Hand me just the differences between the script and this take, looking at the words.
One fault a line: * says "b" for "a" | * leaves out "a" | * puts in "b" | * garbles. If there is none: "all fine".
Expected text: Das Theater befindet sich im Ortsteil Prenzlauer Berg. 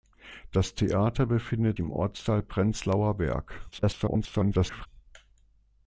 * leaves out "sich"
* garbles